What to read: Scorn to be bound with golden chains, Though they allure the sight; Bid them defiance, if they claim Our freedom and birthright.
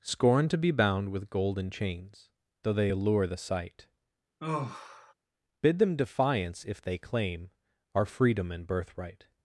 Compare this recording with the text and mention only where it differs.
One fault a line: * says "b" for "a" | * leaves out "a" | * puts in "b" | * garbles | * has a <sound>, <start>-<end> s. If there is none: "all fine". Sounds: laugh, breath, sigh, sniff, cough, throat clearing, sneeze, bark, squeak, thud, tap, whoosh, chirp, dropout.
* has a sigh, 4.4-5.1 s